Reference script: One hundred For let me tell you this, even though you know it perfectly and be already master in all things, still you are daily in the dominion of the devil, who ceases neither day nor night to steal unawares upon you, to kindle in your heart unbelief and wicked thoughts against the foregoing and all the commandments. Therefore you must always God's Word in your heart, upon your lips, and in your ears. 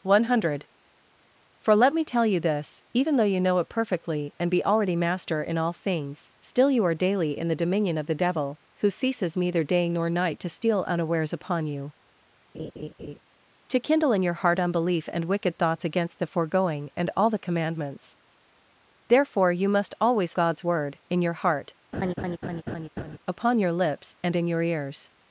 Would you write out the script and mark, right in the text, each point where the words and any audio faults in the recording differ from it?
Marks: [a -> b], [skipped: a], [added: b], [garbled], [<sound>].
One hundred For let me tell you this, even though you know it perfectly and be already master in all things, still you are daily in the dominion of the devil, who ceases neither day nor night to steal unawares upon you, [laugh] to kindle in your heart unbelief and wicked thoughts against the foregoing and all the commandments. Therefore you must always God's Word in your heart, [laugh] upon your lips, and in your ears.